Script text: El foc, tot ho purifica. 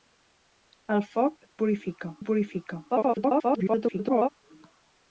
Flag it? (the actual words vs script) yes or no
yes